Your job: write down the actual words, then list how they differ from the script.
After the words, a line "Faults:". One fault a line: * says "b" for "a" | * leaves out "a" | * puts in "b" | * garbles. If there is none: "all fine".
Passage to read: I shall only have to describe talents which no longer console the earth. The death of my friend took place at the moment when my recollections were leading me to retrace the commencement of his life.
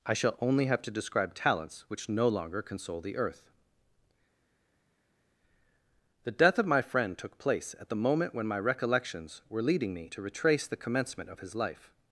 I shall only have to describe talents which no longer console the earth. The death of my friend took place at the moment when my recollections were leading me to retrace the commencement of his life.
Faults:
all fine